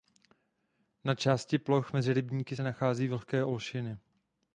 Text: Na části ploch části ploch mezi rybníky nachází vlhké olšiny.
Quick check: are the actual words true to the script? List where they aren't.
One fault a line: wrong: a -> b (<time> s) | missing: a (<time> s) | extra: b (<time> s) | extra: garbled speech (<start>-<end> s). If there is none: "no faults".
missing: části ploch (1.9 s)
extra: se (2.5 s)